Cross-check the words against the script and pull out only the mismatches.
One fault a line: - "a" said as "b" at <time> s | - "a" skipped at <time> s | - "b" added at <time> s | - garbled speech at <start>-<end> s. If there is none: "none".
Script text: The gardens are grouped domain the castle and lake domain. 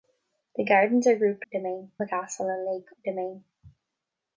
none